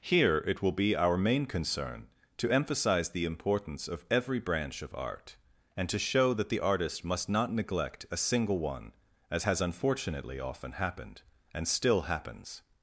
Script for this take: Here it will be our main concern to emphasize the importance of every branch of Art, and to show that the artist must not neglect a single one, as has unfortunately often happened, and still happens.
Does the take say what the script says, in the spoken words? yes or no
yes